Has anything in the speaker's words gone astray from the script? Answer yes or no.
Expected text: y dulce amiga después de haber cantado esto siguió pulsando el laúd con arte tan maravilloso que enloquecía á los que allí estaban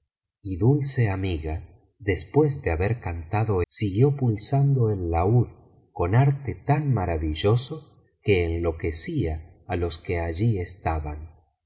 yes